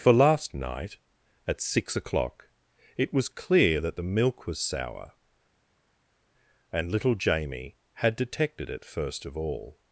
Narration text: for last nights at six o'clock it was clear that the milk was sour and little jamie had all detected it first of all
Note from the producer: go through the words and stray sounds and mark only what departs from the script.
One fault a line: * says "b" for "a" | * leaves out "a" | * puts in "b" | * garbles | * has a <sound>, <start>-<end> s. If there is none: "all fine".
* says "night" for "nights"
* leaves out "all"